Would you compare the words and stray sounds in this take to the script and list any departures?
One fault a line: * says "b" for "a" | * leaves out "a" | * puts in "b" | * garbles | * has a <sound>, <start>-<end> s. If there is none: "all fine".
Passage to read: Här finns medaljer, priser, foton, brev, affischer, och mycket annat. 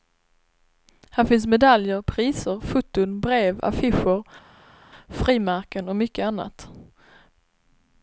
* puts in "frimärken"